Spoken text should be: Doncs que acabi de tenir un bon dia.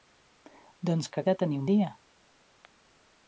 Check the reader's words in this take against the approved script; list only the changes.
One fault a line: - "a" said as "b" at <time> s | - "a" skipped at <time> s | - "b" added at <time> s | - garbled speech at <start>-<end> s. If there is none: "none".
- "acabi" skipped at 1.2 s
- "bon" skipped at 1.7 s